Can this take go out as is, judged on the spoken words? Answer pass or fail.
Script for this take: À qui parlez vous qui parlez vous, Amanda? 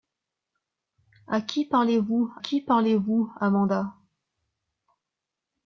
pass